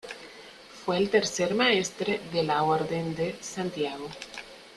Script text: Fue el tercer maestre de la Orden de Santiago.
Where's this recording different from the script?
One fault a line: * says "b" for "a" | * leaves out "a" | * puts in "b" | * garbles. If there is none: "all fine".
all fine